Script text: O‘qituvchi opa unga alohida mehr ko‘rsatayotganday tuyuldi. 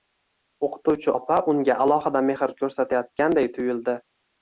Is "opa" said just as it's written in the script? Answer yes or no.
yes